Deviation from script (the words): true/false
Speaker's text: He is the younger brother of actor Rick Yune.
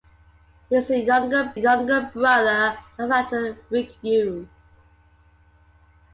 true